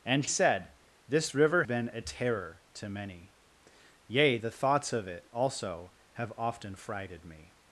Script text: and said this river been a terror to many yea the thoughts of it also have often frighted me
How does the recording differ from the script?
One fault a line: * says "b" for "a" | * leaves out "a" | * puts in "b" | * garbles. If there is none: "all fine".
all fine